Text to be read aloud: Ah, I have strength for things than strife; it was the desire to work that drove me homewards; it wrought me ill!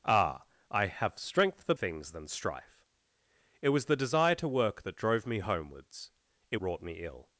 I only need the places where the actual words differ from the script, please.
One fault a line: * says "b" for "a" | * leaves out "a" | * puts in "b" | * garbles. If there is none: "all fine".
all fine